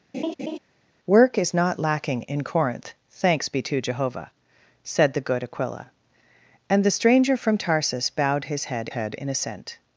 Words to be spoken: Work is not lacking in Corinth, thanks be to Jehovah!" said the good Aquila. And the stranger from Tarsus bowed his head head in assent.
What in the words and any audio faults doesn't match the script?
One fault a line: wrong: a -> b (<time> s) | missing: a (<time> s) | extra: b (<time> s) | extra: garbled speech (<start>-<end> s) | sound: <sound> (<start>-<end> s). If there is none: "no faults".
sound: laugh (0.1-0.6 s)